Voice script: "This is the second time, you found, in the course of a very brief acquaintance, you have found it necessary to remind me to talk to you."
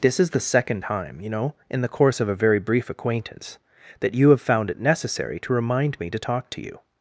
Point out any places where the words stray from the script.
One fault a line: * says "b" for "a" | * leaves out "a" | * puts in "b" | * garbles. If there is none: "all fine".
* says "know" for "found"
* puts in "that"